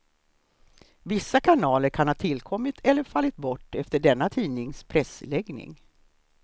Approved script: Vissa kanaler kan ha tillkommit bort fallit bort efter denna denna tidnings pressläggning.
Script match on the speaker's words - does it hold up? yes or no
no